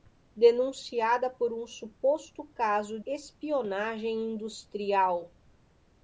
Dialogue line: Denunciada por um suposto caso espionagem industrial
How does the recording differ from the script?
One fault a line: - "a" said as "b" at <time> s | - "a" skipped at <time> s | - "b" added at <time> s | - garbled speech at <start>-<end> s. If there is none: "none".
none